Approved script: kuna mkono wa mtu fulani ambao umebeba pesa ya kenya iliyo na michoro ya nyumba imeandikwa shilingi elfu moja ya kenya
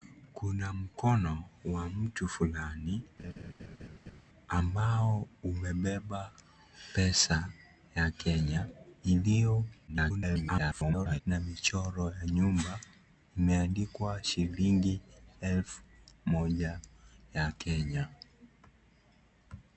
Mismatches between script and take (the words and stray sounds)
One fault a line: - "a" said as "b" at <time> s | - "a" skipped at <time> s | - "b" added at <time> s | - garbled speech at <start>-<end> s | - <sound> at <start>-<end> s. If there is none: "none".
- laugh at 3.2-4.2 s
- garbled speech at 9.9-11.2 s